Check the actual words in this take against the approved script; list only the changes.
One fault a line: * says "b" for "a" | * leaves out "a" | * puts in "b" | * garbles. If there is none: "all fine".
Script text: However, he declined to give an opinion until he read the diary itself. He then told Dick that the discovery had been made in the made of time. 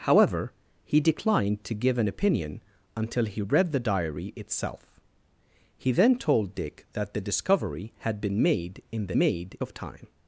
all fine